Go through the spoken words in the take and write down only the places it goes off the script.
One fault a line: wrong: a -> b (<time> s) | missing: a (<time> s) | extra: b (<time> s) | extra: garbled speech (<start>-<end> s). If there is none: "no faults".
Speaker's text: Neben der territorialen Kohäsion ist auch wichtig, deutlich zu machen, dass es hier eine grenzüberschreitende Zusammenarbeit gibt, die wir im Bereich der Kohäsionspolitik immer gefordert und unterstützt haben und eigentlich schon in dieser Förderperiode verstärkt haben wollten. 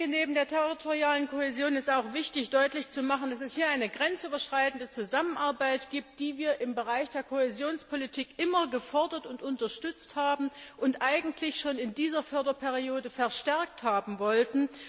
no faults